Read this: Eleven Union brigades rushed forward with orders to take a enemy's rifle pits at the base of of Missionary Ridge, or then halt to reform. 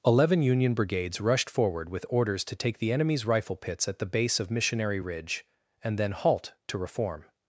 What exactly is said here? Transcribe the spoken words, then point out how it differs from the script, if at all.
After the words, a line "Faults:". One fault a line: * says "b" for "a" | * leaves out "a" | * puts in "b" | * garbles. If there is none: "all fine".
Eleven Union brigades rushed forward with orders to take the enemy's rifle pits at the base of Missionary Ridge, and then halt to reform.
Faults:
* says "the" for "a"
* leaves out "of"
* says "and" for "or"